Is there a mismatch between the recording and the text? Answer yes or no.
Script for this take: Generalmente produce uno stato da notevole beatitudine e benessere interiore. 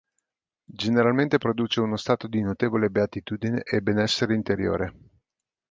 yes